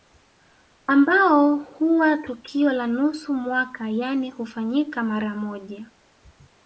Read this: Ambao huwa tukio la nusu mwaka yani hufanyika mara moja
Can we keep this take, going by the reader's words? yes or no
yes